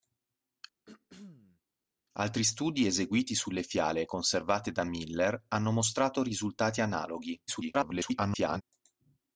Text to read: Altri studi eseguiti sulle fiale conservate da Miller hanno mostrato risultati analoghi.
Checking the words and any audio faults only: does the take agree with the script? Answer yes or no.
no